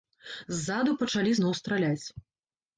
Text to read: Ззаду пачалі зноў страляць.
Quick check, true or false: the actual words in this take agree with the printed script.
true